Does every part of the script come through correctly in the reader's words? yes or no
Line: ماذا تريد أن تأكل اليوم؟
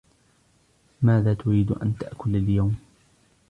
yes